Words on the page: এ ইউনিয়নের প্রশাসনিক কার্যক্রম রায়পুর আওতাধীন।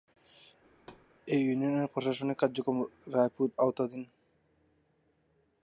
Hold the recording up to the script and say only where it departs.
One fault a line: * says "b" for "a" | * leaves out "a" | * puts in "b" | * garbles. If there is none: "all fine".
all fine